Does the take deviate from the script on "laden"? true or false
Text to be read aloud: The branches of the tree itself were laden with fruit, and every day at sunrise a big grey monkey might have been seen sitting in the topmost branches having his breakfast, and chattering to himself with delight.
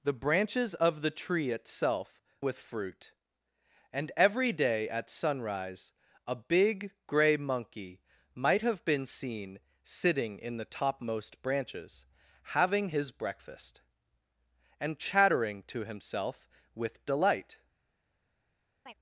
true